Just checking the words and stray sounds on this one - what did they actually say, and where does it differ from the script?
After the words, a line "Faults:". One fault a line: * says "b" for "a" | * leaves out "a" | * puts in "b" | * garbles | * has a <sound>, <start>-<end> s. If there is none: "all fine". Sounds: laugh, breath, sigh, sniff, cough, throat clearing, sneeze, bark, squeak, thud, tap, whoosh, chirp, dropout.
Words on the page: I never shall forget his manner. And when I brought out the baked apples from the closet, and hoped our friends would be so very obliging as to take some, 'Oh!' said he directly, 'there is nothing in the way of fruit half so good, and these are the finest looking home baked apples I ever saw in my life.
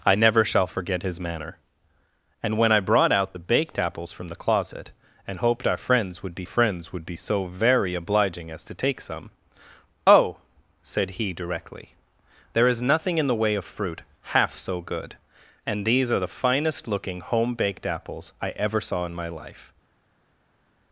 I never shall forget his manner. And when I brought out the baked apples from the closet, and hoped our friends would be friends would be so very obliging as to take some, 'Oh!' said he directly, 'there is nothing in the way of fruit half so good, and these are the finest looking home baked apples I ever saw in my life.
Faults:
* puts in "friends would be"